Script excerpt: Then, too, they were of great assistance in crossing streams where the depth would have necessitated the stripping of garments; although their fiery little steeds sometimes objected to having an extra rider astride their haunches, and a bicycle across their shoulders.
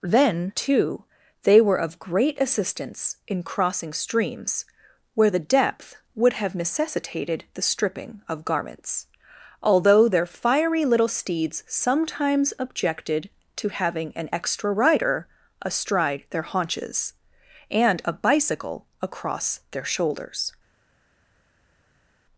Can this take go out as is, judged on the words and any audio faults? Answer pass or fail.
pass